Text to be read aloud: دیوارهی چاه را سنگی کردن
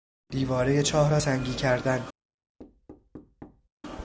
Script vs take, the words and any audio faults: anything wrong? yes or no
yes